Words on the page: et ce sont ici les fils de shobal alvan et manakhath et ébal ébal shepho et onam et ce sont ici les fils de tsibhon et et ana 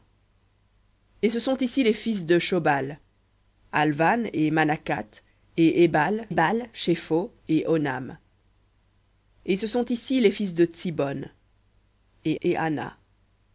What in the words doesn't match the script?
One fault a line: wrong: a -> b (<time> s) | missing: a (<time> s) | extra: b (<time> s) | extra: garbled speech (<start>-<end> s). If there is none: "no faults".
no faults